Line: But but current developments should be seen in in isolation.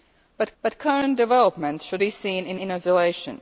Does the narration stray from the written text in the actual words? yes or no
no